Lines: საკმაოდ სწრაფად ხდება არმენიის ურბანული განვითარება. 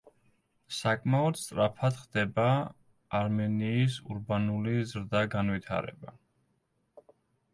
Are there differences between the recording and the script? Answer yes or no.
yes